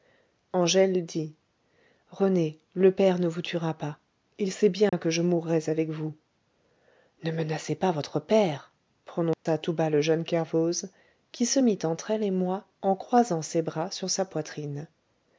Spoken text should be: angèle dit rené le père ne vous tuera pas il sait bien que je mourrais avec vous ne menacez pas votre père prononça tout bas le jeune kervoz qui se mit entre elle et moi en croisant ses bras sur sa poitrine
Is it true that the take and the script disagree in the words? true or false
false